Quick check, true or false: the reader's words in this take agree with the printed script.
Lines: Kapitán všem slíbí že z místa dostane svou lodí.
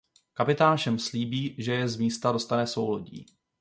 false